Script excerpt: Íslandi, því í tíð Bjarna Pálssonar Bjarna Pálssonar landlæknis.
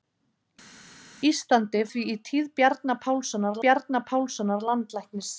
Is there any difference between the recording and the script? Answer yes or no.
no